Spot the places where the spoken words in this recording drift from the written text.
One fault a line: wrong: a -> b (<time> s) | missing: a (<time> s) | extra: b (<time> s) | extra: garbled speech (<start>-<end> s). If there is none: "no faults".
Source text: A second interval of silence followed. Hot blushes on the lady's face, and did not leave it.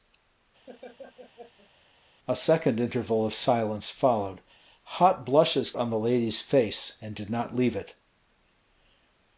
no faults